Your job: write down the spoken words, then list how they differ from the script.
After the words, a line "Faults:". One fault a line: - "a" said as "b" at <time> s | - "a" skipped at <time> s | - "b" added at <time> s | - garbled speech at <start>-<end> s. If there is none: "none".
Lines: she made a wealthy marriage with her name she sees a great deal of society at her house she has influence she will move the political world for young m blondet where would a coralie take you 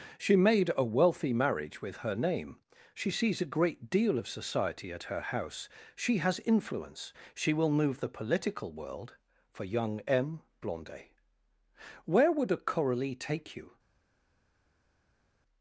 she made a wealthy marriage with her name she sees a great deal of society at her house she has influence she will move the political world for young m blondet where would a coralie take you
Faults:
none